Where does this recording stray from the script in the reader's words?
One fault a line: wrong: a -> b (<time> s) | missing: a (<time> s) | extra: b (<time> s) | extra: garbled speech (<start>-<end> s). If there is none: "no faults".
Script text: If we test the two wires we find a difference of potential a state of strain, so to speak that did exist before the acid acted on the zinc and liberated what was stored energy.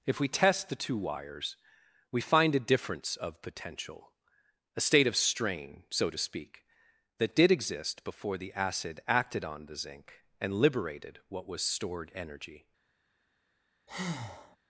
no faults